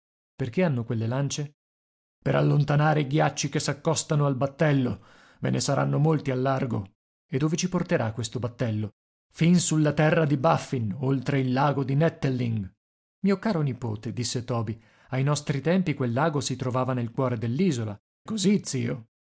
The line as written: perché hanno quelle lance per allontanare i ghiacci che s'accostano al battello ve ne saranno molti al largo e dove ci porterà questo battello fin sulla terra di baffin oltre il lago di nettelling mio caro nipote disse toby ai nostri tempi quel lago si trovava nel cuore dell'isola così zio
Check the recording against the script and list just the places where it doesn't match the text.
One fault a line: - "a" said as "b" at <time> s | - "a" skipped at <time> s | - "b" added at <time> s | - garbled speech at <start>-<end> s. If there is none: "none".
none